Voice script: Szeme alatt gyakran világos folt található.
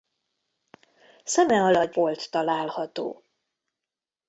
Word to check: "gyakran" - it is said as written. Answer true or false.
false